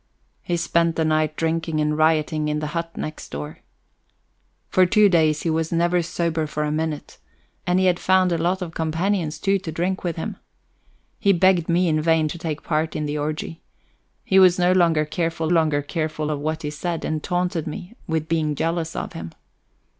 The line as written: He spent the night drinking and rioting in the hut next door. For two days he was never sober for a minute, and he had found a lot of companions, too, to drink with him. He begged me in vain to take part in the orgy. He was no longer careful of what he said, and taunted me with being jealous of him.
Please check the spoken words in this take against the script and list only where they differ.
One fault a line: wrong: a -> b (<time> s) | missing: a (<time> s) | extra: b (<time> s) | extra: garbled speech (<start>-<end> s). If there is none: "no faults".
extra: longer careful (15.5 s)